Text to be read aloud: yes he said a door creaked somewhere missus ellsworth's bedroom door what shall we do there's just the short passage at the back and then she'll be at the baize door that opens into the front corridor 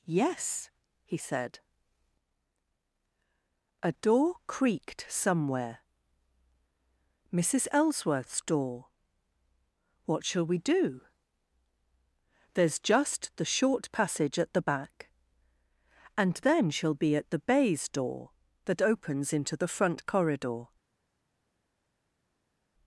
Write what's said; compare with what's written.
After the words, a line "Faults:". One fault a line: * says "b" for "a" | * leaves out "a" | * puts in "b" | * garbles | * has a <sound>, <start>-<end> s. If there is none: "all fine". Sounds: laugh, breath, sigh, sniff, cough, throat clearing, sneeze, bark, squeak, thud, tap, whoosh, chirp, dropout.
yes he said a door creaked somewhere missus ellsworth's door what shall we do there's just the short passage at the back and then she'll be at the baize door that opens into the front corridor
Faults:
* leaves out "bedroom"